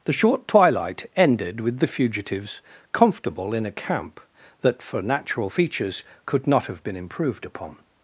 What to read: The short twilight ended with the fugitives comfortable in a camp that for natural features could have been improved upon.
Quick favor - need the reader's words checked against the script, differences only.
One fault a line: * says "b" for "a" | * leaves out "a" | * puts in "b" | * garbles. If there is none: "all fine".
* puts in "not"